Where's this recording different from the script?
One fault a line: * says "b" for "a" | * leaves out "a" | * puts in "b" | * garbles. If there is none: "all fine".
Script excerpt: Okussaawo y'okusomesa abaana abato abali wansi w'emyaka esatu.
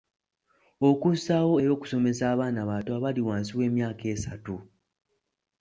all fine